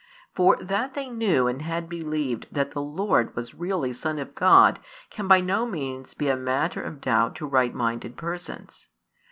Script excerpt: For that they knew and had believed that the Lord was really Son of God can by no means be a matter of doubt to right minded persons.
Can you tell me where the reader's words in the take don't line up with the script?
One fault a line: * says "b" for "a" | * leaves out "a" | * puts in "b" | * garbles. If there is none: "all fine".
all fine